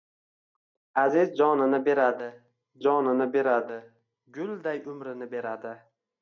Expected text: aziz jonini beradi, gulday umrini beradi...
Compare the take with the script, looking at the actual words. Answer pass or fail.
fail